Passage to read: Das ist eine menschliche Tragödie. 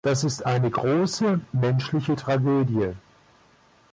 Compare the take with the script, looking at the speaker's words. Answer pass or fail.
fail